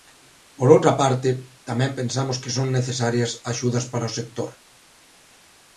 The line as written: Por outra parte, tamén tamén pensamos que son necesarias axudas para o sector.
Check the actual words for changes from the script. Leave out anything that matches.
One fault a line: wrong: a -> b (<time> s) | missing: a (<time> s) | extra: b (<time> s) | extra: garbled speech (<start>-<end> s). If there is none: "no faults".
missing: tamén (1.9 s)